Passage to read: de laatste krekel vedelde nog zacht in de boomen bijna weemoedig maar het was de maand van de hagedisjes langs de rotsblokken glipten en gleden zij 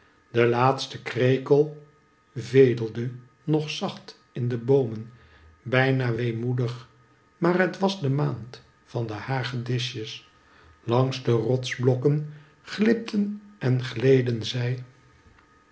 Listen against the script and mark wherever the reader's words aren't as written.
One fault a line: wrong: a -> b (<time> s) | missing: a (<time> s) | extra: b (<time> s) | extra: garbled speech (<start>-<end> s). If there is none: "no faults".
no faults